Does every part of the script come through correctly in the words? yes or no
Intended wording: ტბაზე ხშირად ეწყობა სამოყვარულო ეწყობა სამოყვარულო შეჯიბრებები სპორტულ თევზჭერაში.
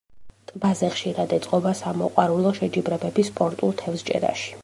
no